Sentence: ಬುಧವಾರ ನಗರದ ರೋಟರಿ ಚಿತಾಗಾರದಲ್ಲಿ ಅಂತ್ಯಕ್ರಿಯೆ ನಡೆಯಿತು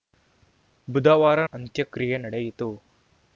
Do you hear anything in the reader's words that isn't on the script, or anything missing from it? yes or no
yes